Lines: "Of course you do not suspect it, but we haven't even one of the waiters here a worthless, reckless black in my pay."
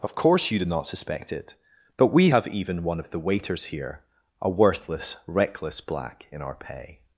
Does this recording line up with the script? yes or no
no